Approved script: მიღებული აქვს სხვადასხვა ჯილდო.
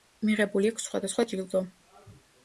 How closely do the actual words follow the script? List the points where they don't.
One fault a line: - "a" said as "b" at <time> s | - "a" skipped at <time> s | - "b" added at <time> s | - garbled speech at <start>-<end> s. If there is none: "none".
none